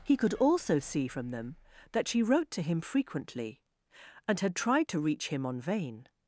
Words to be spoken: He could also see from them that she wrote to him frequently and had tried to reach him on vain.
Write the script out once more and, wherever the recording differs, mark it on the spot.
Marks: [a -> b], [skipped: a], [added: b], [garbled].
He could also see from them that she wrote to him frequently and had tried to reach him on vain.